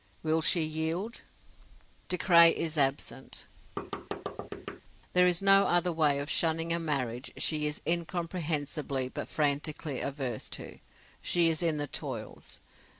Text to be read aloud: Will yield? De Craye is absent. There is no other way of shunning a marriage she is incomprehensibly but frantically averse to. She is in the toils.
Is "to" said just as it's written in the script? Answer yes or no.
yes